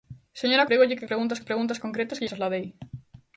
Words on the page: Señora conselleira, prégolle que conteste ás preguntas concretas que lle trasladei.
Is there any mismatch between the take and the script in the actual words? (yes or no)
yes